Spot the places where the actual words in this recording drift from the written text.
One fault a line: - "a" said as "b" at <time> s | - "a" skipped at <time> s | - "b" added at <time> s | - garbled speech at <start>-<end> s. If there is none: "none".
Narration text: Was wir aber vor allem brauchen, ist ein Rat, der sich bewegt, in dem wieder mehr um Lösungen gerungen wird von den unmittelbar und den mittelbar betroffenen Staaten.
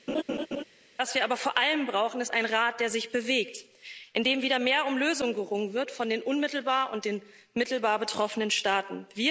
none